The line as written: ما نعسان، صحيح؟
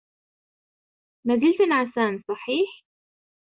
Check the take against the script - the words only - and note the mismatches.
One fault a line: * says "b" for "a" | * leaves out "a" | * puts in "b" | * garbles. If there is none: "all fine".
* puts in "زلت"